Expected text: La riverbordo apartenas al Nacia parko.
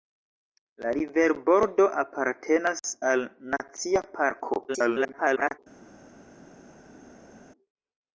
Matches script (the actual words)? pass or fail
fail